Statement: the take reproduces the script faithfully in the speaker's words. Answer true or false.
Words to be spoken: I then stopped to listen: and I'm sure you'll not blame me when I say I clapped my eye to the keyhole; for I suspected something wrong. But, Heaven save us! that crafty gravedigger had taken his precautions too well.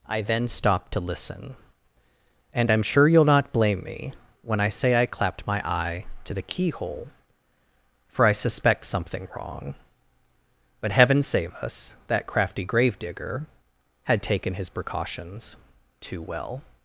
false